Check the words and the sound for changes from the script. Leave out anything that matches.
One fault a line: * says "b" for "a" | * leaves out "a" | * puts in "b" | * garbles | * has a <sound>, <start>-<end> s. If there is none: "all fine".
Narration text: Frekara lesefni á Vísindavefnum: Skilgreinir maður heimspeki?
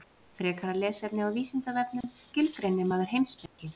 * has a dropout, 2.0-2.0 s
* has a dropout, 3.5-3.6 s